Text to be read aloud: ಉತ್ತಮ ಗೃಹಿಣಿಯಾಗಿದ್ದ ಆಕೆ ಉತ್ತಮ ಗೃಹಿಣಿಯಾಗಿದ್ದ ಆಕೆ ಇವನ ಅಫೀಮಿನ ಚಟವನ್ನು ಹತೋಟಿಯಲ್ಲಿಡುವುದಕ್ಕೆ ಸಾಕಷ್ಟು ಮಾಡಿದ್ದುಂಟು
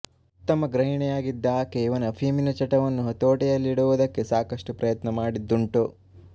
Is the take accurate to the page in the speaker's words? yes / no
no